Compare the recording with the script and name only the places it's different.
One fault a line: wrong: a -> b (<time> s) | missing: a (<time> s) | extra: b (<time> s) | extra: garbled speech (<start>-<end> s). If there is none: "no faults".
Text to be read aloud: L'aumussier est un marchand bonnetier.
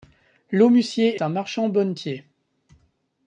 missing: est (1.2 s)